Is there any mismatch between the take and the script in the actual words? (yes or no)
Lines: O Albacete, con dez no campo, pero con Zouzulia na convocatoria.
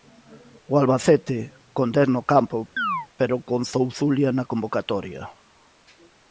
no